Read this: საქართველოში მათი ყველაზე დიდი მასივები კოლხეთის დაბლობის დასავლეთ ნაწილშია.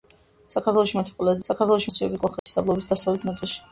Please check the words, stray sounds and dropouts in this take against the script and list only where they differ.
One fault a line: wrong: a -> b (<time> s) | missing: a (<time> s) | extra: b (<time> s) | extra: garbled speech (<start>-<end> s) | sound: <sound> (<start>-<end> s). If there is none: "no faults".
wrong: დიდი -> საქართველოში (1.5 s)
sound: dropout (2.4-2.5 s)